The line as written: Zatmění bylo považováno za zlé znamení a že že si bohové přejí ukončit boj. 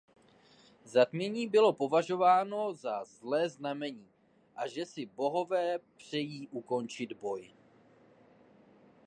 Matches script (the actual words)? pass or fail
fail